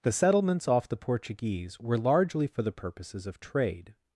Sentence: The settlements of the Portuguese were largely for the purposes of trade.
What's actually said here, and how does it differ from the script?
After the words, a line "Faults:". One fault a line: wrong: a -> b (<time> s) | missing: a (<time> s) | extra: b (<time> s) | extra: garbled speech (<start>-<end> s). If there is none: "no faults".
The settlements off the Portuguese were largely for the purposes of trade.
Faults:
wrong: of -> off (0.7 s)